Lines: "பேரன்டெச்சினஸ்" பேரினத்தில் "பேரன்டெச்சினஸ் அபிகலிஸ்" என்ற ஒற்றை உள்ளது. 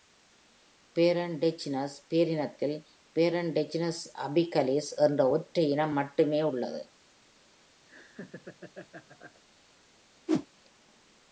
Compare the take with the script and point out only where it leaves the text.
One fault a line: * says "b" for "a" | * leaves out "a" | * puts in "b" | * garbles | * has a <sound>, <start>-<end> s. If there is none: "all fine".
* puts in "இனம் மட்டுமே"
* has a laugh, 7.9-9.4 s
* has a whoosh, 10.3-10.5 s